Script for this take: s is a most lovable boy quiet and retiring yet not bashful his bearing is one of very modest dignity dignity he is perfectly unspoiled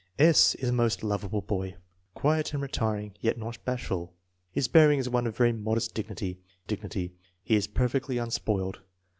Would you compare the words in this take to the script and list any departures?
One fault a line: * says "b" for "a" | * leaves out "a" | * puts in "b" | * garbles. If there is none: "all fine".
all fine